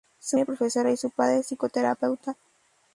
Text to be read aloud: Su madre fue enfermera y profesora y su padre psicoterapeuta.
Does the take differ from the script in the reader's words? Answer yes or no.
yes